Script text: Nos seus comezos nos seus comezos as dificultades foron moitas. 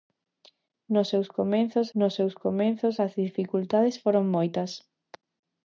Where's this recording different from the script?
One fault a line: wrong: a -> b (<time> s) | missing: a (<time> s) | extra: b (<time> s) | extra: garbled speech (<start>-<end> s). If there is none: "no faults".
no faults